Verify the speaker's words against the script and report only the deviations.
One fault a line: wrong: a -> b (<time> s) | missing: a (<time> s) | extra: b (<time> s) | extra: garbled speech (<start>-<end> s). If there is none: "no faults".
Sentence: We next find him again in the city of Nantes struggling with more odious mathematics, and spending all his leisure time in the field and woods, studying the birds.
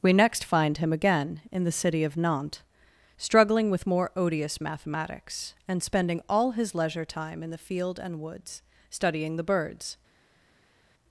no faults